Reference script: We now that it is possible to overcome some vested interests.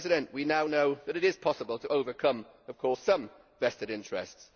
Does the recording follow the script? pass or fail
fail